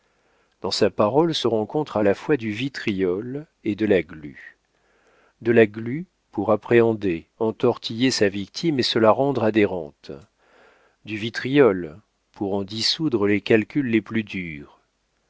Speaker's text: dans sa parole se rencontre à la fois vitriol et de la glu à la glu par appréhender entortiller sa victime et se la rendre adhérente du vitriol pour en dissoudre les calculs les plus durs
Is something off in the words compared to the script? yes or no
yes